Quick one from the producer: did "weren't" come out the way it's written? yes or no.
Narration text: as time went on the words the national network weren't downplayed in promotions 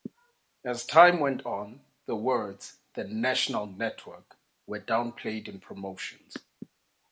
no